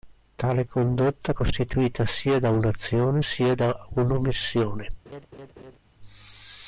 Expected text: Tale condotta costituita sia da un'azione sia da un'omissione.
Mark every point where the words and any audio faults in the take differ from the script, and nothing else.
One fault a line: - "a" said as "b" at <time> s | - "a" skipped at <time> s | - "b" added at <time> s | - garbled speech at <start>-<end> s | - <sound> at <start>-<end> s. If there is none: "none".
- laugh at 5.1-5.8 s